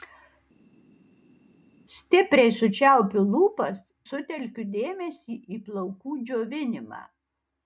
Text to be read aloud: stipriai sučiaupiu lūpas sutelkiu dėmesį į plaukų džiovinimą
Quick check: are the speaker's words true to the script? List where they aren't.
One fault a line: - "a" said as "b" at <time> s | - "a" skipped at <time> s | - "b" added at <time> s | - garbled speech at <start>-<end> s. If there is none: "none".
none